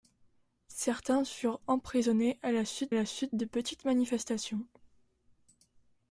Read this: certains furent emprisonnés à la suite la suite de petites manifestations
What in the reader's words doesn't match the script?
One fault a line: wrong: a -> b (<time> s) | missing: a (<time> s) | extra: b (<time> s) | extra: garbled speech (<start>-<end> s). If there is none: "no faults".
no faults